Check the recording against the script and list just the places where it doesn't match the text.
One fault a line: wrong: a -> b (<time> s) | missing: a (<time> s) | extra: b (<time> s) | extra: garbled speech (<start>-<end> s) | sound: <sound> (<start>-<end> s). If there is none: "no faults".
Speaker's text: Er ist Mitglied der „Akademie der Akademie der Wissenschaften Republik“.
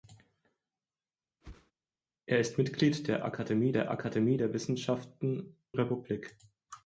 sound: whoosh (1.4-1.7 s)